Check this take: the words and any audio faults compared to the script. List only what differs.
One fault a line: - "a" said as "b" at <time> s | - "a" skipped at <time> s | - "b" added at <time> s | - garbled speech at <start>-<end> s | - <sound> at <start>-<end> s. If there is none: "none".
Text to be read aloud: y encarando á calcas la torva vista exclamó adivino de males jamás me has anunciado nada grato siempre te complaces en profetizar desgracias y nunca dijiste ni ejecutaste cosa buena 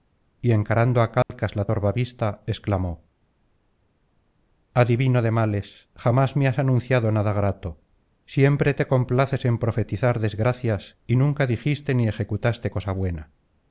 - dropout at 1.2-1.3 s